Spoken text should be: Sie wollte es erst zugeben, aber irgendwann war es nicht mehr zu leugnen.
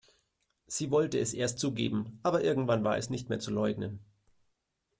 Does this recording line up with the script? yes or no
yes